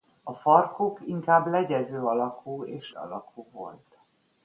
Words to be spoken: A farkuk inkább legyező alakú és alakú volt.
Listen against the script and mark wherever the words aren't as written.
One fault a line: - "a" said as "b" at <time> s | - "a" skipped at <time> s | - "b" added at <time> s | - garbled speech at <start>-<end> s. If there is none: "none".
none